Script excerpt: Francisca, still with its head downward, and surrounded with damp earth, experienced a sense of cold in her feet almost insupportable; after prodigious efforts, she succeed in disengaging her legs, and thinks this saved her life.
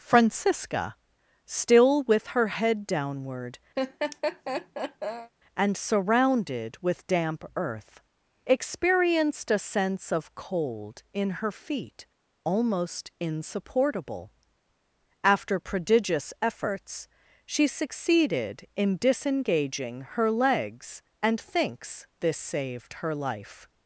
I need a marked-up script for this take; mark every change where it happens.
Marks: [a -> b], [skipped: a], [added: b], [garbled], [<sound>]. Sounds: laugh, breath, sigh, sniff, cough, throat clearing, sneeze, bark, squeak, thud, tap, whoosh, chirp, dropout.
Francisca, still with [its -> her] head downward, [laugh] and surrounded with damp earth, experienced a sense of cold in her feet almost insupportable; after prodigious efforts, she [succeed -> succeeded] in disengaging her legs, and thinks this saved her life.